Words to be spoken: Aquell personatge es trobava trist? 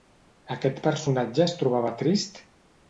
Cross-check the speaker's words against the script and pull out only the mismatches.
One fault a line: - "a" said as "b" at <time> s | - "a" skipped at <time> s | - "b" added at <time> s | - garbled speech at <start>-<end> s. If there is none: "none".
- "Aquell" said as "Aquest" at 0.6 s